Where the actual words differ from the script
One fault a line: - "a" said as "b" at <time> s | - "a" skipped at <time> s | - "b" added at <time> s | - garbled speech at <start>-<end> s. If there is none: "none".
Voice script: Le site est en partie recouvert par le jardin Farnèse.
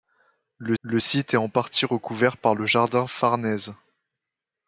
- "le" added at 0.8 s